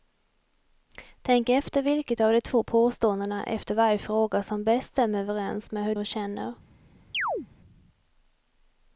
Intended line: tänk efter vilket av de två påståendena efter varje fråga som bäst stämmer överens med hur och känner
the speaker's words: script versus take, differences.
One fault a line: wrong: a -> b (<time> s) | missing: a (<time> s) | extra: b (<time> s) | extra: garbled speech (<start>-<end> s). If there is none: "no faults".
no faults